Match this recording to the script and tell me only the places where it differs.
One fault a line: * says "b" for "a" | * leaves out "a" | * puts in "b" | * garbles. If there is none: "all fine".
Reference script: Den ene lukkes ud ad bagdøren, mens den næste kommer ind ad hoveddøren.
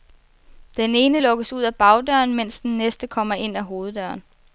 all fine